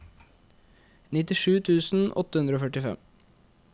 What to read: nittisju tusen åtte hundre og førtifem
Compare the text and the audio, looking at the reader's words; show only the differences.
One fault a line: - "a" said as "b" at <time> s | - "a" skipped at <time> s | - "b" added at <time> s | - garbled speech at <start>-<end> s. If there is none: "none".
none